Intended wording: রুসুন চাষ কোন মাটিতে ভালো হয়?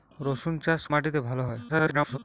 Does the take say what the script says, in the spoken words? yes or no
no